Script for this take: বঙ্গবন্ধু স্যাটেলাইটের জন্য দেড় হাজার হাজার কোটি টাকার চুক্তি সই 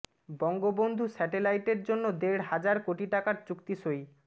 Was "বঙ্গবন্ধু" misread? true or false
false